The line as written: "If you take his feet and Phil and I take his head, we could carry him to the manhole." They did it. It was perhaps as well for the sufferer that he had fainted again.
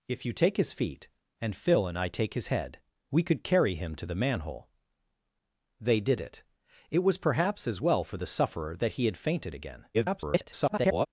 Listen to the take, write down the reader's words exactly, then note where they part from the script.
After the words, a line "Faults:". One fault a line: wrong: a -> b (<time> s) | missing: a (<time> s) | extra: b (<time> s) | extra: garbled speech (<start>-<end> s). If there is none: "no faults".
"If you take his feet and Phil and I take his head, we could carry him to the manhole." They did it. It was perhaps as well for the sufferer that he had fainted again. [garbled]
Faults:
extra: garbled speech (9.9-11.1 s)